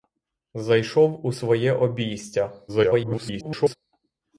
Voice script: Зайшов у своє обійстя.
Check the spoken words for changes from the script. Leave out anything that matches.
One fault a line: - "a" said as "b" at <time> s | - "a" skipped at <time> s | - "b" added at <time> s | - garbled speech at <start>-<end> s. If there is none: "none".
- garbled speech at 2.7-3.8 s